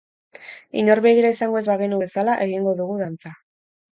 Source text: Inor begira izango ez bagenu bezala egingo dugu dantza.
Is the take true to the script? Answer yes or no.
yes